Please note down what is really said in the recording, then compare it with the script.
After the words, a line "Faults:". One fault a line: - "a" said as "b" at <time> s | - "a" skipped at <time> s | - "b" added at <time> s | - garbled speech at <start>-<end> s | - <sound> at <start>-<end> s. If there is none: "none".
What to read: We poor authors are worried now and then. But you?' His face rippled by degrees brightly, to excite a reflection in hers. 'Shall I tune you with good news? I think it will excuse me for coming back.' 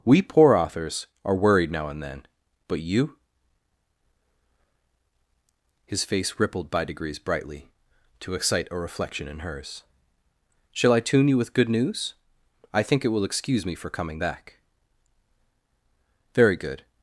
We poor authors are worried now and then. But you?' His face rippled by degrees brightly, to excite a reflection in hers. 'Shall I tune you with good news? I think it will excuse me for coming back.' 'Very good
Faults:
- "Very good" added at 16.3 s